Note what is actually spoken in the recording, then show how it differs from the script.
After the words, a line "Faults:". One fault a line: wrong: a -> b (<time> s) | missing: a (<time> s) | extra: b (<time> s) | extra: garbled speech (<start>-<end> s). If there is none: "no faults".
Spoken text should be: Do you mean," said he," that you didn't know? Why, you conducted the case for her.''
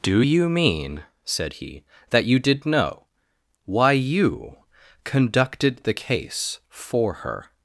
Do you mean," said he," that you did know? Why, you conducted the case for her.''
Faults:
wrong: didn't -> did (2.4 s)